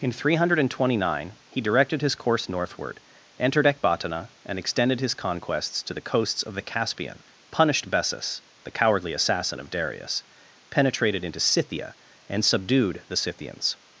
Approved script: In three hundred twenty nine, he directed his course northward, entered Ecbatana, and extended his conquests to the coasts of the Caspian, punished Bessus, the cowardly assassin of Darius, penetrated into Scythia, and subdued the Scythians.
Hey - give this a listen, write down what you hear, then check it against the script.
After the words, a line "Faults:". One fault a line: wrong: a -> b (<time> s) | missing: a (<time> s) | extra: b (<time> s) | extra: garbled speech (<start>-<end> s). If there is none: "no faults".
In three hundred twenty nine, he directed his course northward, entered Ecbatana, and extended his conquests to the coasts of the Caspian, punished Bessus, the cowardly assassin of Darius, penetrated into Scythia, and subdued the Scythians.
Faults:
no faults